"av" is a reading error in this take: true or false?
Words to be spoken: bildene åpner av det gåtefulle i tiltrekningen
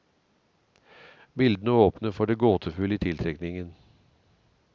true